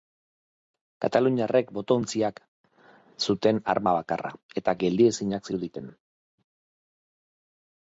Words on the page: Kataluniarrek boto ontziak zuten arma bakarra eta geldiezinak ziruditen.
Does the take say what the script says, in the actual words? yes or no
yes